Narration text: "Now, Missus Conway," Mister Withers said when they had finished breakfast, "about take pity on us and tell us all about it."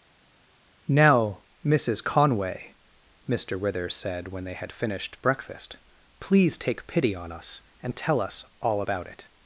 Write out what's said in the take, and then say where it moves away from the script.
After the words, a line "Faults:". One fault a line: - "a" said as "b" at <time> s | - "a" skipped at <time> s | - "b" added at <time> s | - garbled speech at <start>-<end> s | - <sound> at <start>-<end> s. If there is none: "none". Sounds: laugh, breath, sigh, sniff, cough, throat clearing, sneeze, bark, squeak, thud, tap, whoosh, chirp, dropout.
"Now, Missus Conway," Mister Withers said when they had finished breakfast, "please take pity on us and tell us all about it."
Faults:
- "about" said as "please" at 6.2 s